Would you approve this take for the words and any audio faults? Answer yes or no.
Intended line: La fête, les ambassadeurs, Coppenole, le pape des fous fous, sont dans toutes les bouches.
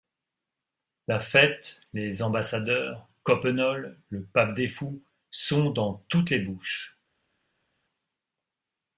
no